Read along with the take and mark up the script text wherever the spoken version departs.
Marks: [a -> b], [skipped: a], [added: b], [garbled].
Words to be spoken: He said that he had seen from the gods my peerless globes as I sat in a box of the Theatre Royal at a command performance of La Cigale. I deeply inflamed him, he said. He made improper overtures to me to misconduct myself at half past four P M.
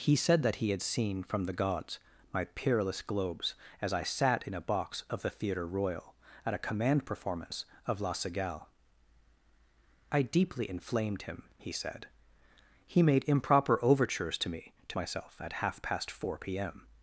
He said that he had seen from the gods my peerless globes as I sat in a box of the Theatre Royal at a command performance of La Cigale. I deeply inflamed him, he said. He made improper overtures to me to [skipped: misconduct] myself at half past four P M.